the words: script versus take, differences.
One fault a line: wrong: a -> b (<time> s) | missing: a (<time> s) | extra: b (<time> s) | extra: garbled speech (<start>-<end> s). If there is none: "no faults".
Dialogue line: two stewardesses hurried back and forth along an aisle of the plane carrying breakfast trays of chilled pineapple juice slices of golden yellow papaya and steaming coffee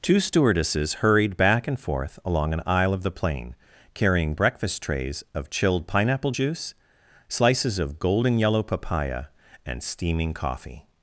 no faults